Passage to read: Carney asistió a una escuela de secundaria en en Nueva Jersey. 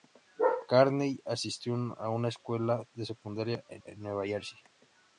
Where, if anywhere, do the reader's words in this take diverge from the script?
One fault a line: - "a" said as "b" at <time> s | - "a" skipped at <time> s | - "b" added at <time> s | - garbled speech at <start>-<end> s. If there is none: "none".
none